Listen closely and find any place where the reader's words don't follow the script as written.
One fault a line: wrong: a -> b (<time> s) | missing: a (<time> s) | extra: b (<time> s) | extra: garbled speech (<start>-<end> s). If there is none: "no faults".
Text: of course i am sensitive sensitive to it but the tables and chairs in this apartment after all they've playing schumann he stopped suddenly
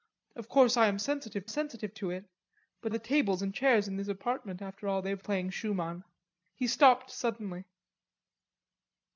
no faults